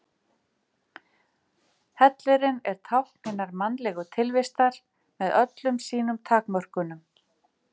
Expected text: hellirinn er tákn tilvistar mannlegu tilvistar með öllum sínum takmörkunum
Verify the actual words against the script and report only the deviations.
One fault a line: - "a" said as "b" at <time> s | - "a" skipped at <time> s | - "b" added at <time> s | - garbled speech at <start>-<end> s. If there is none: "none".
- "tilvistar" said as "hinnar" at 3.3 s